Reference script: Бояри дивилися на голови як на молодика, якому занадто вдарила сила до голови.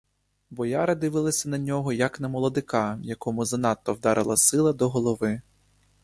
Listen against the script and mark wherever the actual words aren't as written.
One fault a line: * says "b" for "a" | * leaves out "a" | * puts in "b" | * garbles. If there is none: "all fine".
* says "нього" for "голови"